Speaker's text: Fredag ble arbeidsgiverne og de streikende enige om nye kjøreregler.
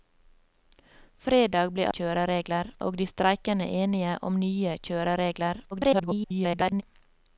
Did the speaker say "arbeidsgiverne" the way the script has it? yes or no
no